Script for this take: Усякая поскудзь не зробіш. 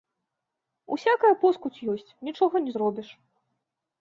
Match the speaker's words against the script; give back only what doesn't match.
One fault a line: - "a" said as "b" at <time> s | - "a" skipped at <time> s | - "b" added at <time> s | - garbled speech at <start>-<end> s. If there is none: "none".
- "ёсць нічога" added at 2.0 s